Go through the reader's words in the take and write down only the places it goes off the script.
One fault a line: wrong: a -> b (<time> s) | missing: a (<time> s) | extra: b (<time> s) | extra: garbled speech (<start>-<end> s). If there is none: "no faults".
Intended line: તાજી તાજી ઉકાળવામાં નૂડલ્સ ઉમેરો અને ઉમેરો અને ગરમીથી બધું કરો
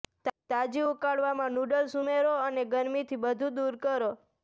missing: તાજી (0.8 s)
missing: ઉમેરો અને (2.7 s)
extra: દૂર (3.6 s)